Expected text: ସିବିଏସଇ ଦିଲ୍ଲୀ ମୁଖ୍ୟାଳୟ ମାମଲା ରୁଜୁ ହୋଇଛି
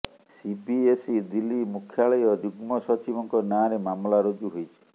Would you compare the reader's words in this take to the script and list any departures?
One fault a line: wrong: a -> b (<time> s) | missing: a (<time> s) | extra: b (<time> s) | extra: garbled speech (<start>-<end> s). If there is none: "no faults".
extra: ଯୁଗ୍ମ ସଚିବଙ୍କ ନାଁରେ (2.4 s)